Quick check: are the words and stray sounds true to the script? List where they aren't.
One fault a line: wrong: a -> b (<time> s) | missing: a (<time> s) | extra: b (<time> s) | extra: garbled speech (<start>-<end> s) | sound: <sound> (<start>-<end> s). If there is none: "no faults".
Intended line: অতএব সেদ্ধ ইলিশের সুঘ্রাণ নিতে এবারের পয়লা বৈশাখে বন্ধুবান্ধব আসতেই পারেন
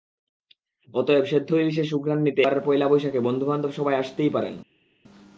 extra: সবাই (3.7 s)